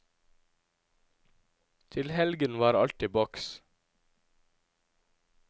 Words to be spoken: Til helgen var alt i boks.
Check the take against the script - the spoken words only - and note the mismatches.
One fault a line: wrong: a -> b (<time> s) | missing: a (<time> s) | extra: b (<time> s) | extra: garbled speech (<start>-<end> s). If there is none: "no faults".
no faults